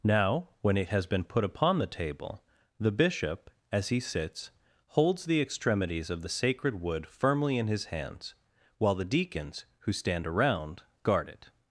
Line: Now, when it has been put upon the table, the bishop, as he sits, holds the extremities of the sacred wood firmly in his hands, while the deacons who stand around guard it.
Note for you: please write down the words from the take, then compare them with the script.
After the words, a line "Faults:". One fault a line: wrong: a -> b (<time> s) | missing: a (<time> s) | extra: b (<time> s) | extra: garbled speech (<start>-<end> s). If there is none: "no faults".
Now, when it has been put upon the table, the bishop, as he sits, holds the extremities of the sacred wood firmly in his hands, while the deacons who stand around guard it.
Faults:
no faults